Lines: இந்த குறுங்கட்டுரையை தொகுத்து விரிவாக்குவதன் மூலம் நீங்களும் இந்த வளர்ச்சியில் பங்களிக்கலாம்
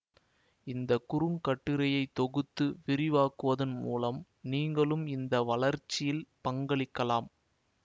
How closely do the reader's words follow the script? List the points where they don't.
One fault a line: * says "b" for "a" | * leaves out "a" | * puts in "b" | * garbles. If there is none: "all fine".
all fine